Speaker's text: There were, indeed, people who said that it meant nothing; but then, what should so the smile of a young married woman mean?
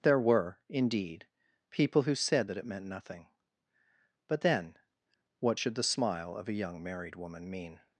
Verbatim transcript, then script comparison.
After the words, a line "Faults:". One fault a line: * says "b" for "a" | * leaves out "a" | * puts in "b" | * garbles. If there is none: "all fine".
There were, indeed, people who said that it meant nothing; but then, what should the smile of a young married woman mean?
Faults:
* leaves out "so"